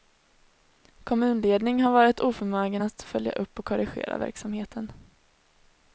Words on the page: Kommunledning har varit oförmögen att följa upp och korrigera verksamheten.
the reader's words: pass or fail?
pass